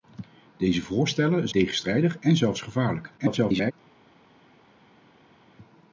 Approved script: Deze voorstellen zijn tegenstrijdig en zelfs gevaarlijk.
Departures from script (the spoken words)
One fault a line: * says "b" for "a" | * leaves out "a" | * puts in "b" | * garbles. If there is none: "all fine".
* leaves out "zijn"
* garbles